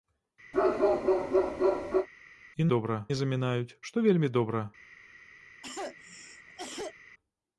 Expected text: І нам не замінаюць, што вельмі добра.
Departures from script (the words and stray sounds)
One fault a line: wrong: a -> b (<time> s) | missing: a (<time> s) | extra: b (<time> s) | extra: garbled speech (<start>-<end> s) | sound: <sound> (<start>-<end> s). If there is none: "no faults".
sound: bark (0.5-2.1 s)
wrong: нам -> добра (2.7 s)
sound: cough (5.6-6.9 s)